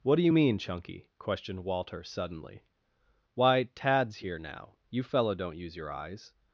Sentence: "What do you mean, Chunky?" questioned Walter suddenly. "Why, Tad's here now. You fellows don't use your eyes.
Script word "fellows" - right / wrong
wrong